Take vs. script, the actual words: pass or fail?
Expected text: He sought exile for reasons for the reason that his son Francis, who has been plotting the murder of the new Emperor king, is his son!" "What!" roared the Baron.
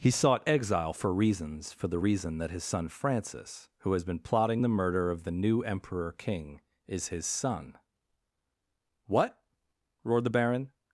pass